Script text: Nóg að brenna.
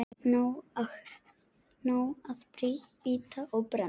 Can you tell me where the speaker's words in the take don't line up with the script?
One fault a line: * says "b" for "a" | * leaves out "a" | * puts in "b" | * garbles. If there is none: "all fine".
* puts in "bíta og"